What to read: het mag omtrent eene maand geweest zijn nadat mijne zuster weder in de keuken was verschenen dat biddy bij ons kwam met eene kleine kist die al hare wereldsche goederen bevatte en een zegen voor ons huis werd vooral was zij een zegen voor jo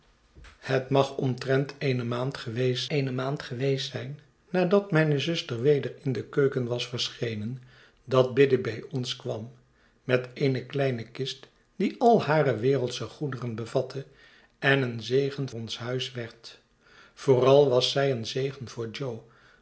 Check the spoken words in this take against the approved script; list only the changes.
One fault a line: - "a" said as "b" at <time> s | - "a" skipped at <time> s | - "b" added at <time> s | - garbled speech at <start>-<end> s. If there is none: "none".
- "eene maand geweest" added at 2.9 s
- "voor" skipped at 15.5 s